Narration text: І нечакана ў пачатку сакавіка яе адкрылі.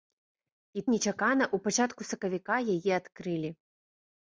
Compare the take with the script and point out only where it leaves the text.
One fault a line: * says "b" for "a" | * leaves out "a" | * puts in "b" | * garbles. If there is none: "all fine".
all fine